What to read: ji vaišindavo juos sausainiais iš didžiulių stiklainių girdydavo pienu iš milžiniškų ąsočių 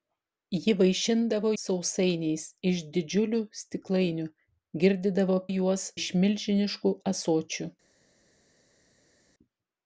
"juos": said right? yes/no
no